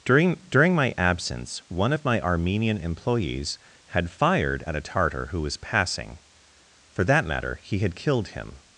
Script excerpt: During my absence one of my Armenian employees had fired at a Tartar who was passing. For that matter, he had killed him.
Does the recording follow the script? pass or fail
fail